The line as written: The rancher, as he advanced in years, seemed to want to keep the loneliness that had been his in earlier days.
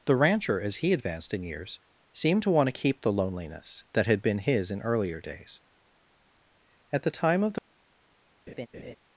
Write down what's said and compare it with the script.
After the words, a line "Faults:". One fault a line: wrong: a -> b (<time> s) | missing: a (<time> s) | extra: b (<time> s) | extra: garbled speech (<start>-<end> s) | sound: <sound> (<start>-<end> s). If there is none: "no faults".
The rancher, as he advanced in years, seemed to want to keep the loneliness that had been his in earlier days. At the time of the
Faults:
extra: At the time of the (6.9 s)
sound: laugh (8.5-9.0 s)